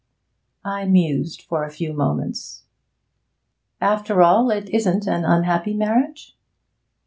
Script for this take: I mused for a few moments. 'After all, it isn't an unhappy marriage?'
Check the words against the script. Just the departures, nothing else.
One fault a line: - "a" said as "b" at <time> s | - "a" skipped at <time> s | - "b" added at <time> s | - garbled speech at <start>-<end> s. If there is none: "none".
none